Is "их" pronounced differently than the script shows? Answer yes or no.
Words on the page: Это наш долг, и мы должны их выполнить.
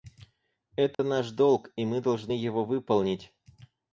yes